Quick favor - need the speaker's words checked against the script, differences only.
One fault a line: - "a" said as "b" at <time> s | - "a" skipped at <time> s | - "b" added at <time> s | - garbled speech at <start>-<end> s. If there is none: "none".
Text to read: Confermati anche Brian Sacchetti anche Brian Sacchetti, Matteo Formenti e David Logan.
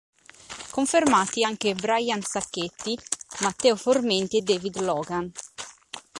- "anche Brian Sacchetti" skipped at 3.0 s